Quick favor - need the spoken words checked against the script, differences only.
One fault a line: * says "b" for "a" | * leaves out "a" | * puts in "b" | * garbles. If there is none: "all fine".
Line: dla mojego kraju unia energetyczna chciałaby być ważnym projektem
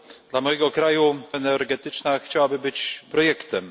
* leaves out "unia"
* leaves out "ważnym"